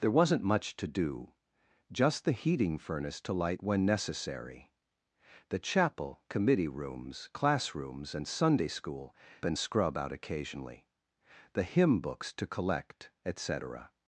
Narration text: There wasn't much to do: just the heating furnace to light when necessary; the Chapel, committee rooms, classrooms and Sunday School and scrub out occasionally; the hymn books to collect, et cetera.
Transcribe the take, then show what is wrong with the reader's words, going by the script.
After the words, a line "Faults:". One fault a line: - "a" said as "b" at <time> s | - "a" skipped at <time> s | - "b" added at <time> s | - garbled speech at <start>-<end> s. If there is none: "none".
There wasn't much to do: just the heating furnace to light when necessary; the Chapel, committee rooms, classrooms and Sunday School and scrub out occasionally; the hymn books to collect, et cetera.
Faults:
none